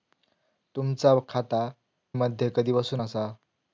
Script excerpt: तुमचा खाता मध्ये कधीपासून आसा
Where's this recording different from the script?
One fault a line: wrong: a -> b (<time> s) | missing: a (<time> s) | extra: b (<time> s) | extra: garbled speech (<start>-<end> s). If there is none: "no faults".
no faults